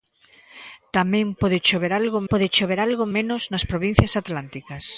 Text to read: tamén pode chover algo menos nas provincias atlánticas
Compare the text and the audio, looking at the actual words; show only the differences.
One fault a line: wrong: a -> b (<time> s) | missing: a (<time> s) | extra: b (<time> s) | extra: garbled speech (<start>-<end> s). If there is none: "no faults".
extra: pode chover algo (2.3 s)